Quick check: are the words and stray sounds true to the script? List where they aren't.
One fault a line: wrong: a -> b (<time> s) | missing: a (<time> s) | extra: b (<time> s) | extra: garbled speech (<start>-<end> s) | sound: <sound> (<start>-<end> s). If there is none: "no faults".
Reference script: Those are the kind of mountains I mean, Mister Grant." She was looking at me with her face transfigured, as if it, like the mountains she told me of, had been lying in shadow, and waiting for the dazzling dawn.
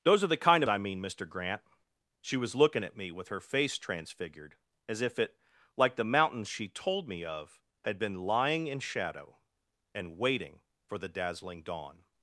missing: mountains (0.7 s)